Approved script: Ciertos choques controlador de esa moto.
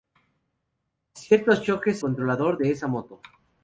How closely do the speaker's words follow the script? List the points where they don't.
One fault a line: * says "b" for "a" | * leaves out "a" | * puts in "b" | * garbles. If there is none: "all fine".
all fine